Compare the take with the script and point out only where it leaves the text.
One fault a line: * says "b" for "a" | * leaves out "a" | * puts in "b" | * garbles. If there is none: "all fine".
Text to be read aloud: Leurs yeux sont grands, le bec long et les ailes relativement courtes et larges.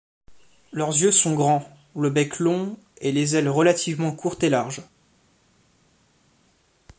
all fine